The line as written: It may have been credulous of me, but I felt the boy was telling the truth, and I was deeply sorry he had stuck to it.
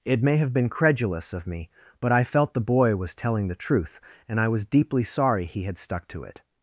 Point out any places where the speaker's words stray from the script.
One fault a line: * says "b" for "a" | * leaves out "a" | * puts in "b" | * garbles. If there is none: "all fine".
all fine